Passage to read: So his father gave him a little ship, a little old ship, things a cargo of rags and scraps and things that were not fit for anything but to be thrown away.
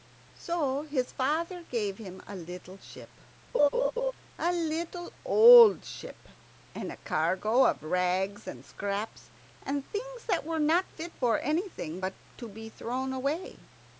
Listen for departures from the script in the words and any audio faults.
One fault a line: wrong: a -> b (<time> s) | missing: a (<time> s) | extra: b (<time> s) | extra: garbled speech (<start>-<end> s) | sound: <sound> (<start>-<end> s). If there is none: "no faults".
sound: laugh (3.5-4.1 s)
wrong: things -> and (6.7 s)